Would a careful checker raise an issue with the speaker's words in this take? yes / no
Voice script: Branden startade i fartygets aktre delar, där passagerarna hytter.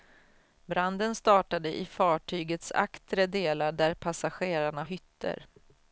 no